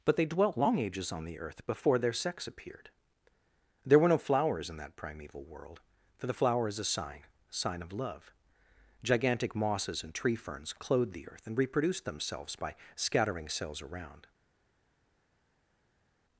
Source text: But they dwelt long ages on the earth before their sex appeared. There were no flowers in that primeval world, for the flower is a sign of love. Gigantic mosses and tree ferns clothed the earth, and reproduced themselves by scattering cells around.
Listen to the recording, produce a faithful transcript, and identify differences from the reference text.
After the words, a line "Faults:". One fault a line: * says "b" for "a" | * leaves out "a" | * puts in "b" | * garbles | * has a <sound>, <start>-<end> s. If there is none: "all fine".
But they dwelt long ages on the earth before their sex appeared. There were no flowers in that primeval world, for the flower is a sign sign of love. Gigantic mosses and tree ferns clothed the earth, and reproduced themselves by scattering cells around.
Faults:
* puts in "sign"